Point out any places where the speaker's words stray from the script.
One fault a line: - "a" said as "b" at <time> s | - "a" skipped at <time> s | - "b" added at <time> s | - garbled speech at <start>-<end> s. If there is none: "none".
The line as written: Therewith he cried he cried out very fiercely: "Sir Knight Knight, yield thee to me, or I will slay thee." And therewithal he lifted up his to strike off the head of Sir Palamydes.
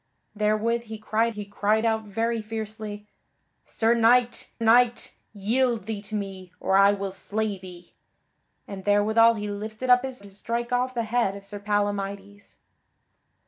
none